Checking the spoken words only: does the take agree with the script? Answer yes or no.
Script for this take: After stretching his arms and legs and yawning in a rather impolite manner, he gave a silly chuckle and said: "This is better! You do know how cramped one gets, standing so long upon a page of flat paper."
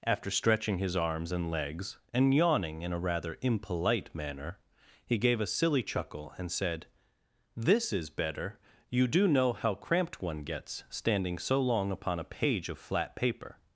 yes